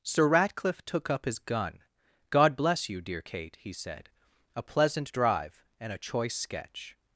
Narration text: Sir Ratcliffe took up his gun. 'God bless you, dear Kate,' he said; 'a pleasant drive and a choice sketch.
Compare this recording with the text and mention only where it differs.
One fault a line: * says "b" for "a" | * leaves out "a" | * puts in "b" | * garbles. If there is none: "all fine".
all fine